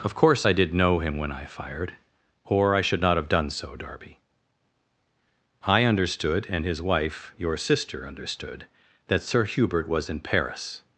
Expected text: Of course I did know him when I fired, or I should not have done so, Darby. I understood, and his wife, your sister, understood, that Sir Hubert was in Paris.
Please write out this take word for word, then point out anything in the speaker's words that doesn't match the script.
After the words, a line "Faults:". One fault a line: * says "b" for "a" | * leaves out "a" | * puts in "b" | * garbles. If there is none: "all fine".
Of course I did know him when I fired, or I should not have done so, Darby. I understood, and his wife, your sister, understood, that Sir Hubert was in Paris.
Faults:
all fine